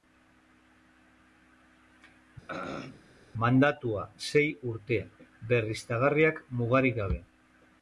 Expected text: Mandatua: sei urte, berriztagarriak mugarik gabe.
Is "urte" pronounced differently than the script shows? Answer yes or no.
no